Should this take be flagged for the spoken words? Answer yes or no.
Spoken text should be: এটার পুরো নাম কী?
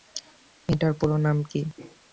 no